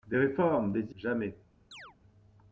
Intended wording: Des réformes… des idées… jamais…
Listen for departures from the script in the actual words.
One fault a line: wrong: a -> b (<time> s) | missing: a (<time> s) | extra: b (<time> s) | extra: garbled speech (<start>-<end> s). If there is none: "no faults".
missing: idées (0.9 s)